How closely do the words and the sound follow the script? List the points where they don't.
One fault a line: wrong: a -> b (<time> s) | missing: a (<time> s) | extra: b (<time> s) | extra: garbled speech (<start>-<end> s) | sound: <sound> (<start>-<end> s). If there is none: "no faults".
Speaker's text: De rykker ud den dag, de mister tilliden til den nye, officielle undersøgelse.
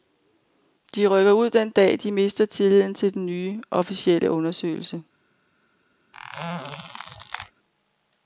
sound: squeak (6.1-7.5 s)